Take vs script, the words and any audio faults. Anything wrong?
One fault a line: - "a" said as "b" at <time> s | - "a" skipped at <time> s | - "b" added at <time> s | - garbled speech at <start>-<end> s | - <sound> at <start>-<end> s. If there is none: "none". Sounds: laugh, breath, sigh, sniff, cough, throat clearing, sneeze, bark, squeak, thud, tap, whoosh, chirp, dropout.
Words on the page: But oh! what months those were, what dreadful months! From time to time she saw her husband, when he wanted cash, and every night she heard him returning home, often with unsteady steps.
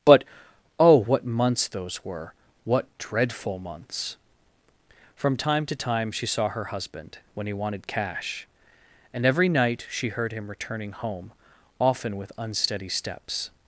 none